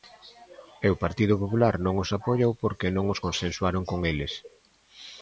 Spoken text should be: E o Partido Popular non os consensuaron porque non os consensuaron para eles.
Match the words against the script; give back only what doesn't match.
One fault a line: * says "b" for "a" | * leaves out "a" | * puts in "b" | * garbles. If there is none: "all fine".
* says "apoiou" for "consensuaron"
* says "con" for "para"